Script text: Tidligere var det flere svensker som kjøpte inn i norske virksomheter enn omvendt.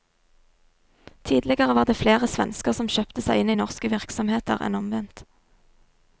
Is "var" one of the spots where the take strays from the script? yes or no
no